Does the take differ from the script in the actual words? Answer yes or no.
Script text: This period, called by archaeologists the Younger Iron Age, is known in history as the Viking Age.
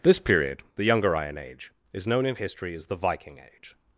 yes